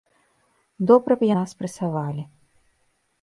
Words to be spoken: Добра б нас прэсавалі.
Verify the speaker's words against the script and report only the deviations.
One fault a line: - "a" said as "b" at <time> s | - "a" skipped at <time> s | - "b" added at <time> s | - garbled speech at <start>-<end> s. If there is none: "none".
none